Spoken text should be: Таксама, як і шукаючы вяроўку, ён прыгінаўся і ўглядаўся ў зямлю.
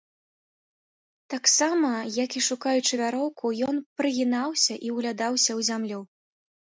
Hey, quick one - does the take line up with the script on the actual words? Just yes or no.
yes